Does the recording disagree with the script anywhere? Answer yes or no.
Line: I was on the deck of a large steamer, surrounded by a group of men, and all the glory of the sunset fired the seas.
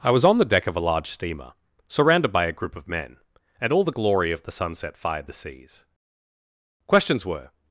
yes